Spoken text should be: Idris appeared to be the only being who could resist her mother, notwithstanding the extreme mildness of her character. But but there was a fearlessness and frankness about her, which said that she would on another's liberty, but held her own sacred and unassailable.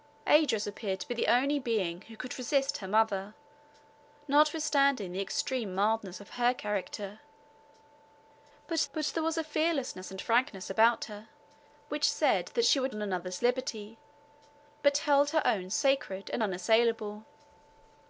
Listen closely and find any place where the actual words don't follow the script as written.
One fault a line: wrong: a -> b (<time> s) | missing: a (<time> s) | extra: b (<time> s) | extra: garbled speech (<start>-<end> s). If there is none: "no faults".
no faults